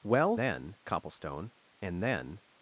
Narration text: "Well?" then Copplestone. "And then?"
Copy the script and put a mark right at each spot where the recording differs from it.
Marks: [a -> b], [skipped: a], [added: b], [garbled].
"Well?" then Copplestone. "And then?"